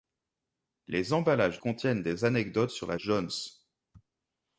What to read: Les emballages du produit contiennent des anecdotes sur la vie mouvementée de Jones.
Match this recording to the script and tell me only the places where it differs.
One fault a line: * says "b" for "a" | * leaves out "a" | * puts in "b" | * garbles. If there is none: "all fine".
* leaves out "du produit"
* leaves out "vie mouvementée de"